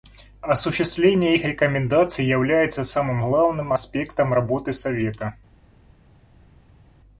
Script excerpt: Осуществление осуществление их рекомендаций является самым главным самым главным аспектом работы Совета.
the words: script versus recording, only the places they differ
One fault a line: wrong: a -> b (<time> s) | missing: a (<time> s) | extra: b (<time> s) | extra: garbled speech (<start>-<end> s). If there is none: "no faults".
missing: осуществление (1.4 s)
missing: самым главным (3.8 s)